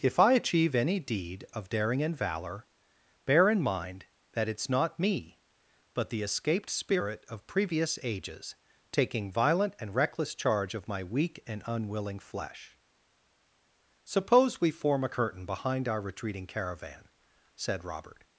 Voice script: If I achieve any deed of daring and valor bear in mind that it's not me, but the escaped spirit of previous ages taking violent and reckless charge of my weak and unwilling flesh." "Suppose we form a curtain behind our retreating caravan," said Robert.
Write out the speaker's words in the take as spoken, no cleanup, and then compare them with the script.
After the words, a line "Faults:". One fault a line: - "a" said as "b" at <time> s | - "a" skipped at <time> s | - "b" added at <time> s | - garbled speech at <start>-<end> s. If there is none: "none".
If I achieve any deed of daring and valor bear in mind that it's not me, but the escaped spirit of previous ages taking violent and reckless charge of my weak and unwilling flesh." "Suppose we form a curtain behind our retreating caravan," said Robert.
Faults:
none